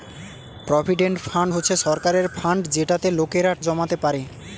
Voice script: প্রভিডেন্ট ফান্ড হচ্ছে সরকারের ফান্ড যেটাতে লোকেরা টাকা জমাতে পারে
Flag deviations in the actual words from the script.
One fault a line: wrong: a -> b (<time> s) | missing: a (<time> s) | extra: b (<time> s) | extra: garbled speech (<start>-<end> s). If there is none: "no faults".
missing: টাকা (3.5 s)